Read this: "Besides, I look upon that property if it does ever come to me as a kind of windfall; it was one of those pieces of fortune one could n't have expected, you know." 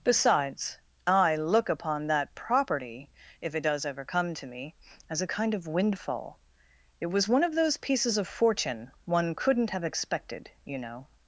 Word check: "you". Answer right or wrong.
right